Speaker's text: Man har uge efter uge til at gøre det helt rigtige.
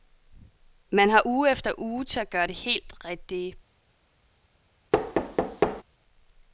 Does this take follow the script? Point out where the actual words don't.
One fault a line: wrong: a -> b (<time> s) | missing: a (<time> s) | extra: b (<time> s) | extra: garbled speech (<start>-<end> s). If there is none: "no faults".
no faults